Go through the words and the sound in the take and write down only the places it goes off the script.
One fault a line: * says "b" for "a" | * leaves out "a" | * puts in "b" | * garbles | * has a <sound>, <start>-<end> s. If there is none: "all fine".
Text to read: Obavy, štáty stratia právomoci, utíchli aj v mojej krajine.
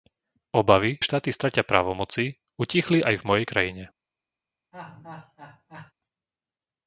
* has a laugh, 4.7-5.9 s